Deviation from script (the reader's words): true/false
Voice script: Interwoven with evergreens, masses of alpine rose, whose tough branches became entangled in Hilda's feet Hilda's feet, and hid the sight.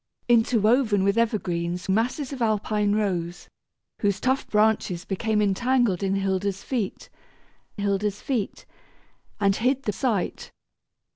false